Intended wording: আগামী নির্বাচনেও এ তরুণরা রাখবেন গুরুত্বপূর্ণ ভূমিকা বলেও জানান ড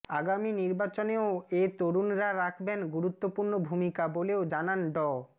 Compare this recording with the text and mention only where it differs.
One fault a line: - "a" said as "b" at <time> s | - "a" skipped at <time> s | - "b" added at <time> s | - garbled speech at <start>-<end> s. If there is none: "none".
none